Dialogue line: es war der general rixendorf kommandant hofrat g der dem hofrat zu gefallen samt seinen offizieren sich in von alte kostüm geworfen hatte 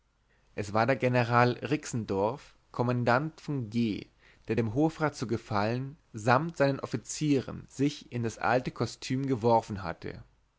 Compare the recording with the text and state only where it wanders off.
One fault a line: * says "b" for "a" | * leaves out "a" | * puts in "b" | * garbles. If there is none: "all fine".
* says "von" for "hofrat"
* says "das" for "von"